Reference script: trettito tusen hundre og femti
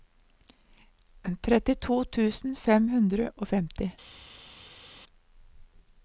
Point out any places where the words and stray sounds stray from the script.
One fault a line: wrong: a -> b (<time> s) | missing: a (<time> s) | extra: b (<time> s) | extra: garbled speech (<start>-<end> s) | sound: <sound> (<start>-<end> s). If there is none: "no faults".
extra: fem (2.6 s)